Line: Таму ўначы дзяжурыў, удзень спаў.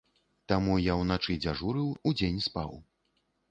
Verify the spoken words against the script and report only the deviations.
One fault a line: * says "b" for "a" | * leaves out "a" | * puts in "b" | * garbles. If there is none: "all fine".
* puts in "я"